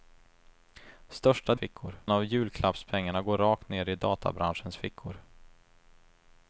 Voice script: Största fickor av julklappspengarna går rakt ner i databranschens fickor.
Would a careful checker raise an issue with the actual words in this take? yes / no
no